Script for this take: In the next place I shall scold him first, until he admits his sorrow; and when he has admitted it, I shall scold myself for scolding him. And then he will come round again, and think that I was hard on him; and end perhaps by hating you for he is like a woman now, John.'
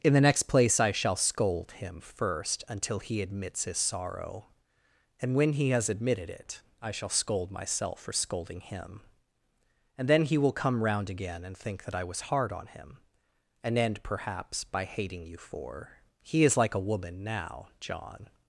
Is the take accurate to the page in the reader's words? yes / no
yes